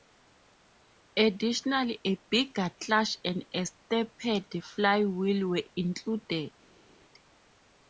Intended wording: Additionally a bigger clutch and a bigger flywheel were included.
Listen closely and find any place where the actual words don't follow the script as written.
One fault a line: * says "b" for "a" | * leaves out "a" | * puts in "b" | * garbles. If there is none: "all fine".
* says "stepped" for "bigger"